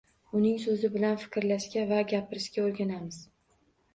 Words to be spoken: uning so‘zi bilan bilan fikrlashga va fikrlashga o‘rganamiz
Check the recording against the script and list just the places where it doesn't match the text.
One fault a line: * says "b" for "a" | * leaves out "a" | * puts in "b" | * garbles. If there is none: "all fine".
* leaves out "bilan"
* says "gapirishga" for "fikrlashga"